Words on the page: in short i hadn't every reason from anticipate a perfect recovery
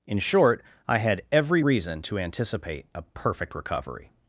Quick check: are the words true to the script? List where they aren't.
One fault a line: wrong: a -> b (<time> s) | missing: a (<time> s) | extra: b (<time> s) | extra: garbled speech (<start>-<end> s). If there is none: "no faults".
wrong: hadn't -> had (1.0 s)
wrong: from -> to (2.0 s)